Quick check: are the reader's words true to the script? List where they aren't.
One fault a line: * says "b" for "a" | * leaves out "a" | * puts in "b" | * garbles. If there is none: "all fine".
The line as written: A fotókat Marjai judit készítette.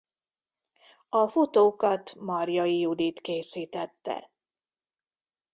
all fine